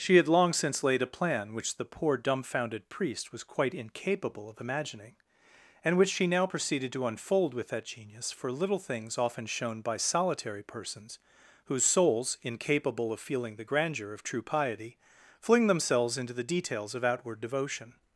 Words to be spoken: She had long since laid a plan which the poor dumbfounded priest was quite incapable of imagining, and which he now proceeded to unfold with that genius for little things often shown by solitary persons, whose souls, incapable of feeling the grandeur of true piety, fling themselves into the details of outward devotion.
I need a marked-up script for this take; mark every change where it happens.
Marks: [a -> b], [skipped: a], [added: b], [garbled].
She had long since laid a plan which the poor dumbfounded priest was quite incapable of imagining, and which [he -> she] now proceeded to unfold with that genius for little things often shown by solitary persons, whose souls, incapable of feeling the grandeur of true piety, fling themselves into the details of outward devotion.